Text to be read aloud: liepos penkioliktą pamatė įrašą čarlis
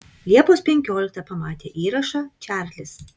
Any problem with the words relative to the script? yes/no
no